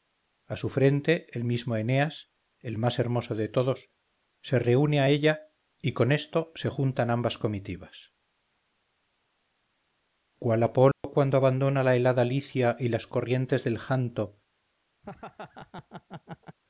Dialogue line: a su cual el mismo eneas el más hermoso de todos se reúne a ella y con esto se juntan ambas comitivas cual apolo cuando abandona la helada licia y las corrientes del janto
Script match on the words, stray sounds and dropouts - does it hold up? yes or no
no